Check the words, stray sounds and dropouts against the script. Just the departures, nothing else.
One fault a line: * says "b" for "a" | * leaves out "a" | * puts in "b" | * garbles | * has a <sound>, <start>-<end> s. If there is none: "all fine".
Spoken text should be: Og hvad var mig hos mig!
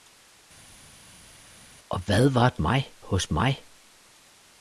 all fine